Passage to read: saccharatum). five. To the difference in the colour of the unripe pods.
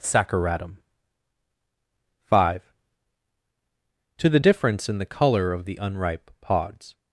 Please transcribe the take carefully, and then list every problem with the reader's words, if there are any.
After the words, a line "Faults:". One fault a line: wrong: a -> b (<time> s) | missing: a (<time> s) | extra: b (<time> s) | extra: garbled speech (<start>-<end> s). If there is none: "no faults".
saccharatum). five. To the difference in the colour of the unripe pods.
Faults:
no faults